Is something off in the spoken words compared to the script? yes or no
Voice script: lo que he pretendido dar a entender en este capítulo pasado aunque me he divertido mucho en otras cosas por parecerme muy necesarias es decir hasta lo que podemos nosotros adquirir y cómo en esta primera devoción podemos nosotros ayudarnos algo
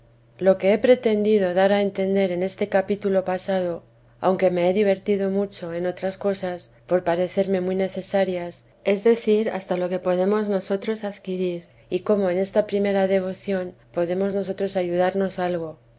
no